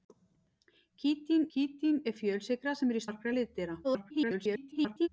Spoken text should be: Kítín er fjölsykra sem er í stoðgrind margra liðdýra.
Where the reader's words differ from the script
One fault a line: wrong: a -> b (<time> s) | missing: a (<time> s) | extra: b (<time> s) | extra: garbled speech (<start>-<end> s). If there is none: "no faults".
extra: kítín (1.5 s)
missing: stoðgrind (3.0 s)
extra: garbled speech (3.8-5.1 s)